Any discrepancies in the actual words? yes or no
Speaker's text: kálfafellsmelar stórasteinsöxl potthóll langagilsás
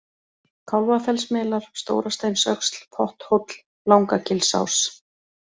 no